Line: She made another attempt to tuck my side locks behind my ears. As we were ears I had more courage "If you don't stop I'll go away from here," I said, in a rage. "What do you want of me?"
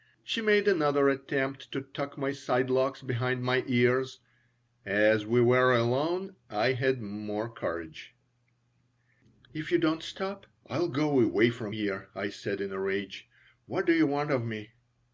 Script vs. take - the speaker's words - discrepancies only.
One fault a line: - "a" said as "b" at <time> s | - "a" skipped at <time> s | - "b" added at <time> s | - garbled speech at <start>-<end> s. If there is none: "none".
- "ears" said as "alone" at 5.8 s